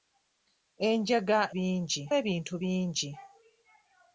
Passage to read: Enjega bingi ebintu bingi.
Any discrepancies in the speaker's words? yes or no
no